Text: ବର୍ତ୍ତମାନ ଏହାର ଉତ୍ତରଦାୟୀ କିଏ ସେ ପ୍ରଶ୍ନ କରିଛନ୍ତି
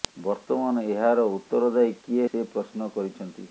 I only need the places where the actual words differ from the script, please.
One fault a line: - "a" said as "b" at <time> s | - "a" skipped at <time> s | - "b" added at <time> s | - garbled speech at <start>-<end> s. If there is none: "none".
none